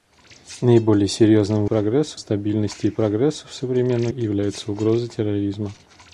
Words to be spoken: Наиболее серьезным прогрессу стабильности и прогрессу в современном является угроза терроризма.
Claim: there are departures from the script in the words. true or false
false